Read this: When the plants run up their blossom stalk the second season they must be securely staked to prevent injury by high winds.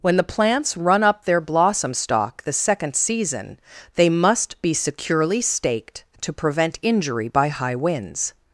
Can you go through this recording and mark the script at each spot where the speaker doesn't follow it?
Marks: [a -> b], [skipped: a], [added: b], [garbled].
When the plants run up their blossom stalk the second season they must be securely staked to prevent injury by high winds.